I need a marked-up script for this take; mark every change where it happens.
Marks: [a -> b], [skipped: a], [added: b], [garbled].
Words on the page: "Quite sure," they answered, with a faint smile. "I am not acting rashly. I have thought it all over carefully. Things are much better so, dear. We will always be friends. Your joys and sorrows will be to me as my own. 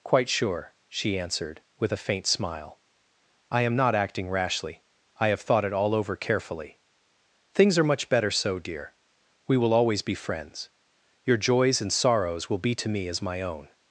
"Quite sure," [they -> she] answered, with a faint smile. "I am not acting rashly. I have thought it all over carefully. Things are much better so, dear. We will always be friends. Your joys and sorrows will be to me as my own.